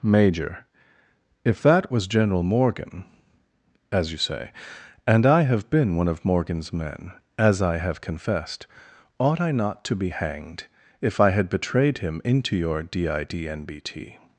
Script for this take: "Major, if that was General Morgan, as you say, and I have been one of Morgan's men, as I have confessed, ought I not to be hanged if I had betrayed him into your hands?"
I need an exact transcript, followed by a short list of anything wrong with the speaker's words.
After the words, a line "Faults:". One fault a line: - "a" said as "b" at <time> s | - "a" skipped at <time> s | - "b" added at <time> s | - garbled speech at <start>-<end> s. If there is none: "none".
"Major, if that was General Morgan, as you say, and I have been one of Morgan's men, as I have confessed, ought I not to be hanged if I had betrayed him into your didnbt?"
Faults:
- "hands" said as "didnbt" at 12.8 s